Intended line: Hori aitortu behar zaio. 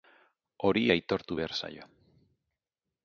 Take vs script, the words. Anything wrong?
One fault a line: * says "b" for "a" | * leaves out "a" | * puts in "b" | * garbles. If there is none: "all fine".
all fine